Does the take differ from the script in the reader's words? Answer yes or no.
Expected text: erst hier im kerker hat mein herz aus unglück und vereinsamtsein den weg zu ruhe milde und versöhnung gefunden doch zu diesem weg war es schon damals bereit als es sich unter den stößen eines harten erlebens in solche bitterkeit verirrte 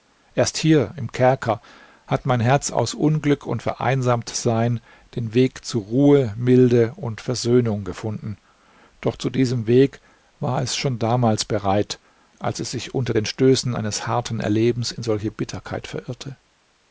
no